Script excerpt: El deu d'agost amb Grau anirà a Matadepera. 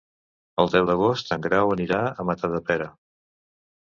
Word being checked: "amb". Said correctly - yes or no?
no